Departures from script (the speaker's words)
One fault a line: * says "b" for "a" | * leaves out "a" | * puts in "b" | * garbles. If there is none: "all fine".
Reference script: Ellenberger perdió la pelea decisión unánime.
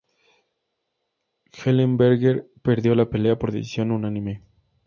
* puts in "por"